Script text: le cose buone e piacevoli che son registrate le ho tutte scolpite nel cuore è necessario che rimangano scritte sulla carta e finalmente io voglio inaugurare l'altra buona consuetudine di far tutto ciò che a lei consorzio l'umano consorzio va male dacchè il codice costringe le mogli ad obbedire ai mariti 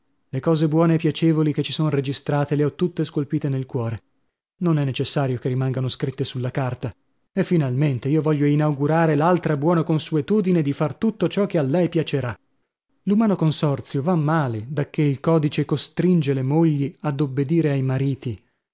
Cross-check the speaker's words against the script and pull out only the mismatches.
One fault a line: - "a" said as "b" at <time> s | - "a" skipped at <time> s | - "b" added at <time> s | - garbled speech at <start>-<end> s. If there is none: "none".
- "ci" added at 1.6 s
- "non" added at 4.6 s
- "consorzio" said as "piacerà" at 11.9 s